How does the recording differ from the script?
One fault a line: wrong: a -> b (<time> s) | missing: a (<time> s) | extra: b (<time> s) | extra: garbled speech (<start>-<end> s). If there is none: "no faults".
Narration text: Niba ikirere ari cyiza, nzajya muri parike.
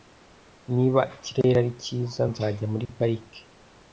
no faults